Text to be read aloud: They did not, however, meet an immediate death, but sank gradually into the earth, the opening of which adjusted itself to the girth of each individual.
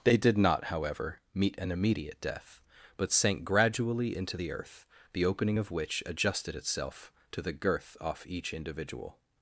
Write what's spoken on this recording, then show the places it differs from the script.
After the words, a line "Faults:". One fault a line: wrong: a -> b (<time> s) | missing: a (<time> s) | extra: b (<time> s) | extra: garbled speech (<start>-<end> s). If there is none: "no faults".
They did not, however, meet an immediate death, but sank gradually into the earth, the opening of which adjusted itself to the girth off each individual.
Faults:
wrong: of -> off (8.0 s)